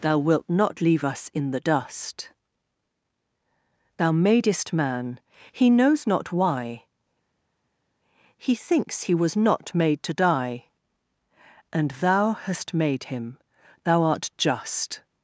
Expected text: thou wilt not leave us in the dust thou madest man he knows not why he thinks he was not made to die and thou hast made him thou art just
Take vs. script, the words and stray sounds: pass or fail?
pass